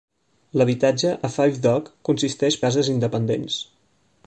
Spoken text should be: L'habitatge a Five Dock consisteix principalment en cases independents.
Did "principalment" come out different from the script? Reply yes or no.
yes